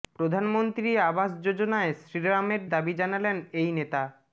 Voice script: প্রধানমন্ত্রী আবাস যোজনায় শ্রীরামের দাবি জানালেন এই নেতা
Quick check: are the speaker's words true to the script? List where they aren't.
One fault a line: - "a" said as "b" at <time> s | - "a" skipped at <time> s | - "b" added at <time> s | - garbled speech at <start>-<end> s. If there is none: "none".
none